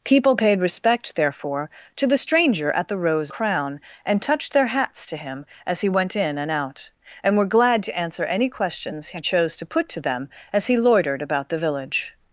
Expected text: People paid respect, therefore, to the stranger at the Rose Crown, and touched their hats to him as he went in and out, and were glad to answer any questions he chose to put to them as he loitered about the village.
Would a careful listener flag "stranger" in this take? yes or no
no